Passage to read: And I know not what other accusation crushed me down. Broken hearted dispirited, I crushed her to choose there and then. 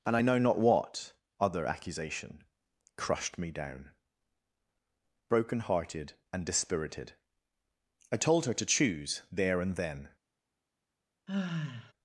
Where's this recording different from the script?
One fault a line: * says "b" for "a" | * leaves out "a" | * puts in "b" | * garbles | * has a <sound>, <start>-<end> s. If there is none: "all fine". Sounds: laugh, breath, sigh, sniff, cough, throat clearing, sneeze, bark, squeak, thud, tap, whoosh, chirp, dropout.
* puts in "and"
* says "told" for "crushed"
* has a sigh, 11.3-11.9 s